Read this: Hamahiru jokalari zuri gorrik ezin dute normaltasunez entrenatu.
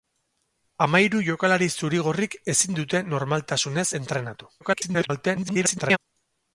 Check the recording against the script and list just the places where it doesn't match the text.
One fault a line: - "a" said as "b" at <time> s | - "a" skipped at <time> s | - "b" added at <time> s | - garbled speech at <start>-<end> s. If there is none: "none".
- garbled speech at 4.6-6.0 s